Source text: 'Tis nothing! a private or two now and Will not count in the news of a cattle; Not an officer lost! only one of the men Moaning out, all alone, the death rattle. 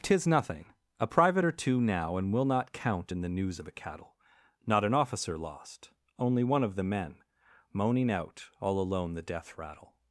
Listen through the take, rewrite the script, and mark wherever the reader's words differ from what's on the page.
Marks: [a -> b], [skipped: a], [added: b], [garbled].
'Tis nothing! a private or two now and Will not count in the news of a cattle; Not an officer lost! only one of the men Moaning out, all alone, the death rattle.